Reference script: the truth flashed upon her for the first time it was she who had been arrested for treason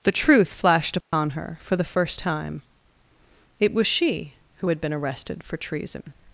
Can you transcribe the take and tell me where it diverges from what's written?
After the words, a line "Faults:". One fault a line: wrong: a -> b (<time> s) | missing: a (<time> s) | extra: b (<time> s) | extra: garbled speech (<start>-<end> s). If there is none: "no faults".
the truth flashed upon her for the first time it was she who had been arrested for treason
Faults:
no faults